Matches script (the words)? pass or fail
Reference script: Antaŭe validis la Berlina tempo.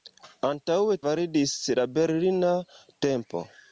pass